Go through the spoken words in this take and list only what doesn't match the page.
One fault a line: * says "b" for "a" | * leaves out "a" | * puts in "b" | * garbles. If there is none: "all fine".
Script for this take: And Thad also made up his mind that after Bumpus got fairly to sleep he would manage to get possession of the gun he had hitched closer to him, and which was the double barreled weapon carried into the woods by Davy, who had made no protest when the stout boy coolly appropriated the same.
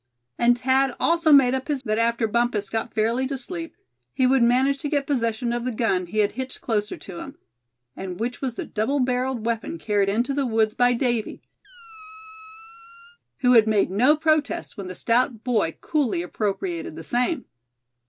* leaves out "mind"